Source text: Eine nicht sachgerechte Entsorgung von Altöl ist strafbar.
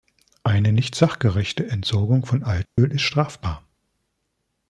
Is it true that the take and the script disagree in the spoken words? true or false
false